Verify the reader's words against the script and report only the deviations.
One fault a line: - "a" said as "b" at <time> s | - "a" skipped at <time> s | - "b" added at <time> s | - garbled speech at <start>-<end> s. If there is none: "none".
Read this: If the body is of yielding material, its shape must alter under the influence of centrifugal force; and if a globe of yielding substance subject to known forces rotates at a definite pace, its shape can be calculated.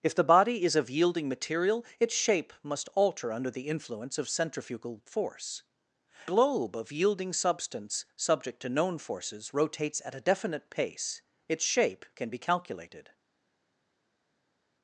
- "and if a" skipped at 5.6 s